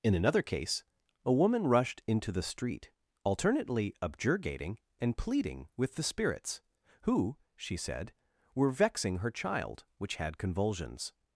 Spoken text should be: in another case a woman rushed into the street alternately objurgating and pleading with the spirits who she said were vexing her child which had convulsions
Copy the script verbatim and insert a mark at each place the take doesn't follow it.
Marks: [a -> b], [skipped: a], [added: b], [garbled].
in another case a woman rushed into the street alternately objurgating and pleading with the spirits who she said were vexing her child which had convulsions